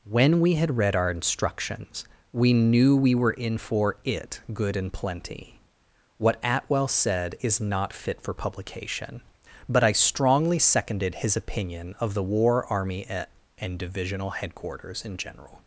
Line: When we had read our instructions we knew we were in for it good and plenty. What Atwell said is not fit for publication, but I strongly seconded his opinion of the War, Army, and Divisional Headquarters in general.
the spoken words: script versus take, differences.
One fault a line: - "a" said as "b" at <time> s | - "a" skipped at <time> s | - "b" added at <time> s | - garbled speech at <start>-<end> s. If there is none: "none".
none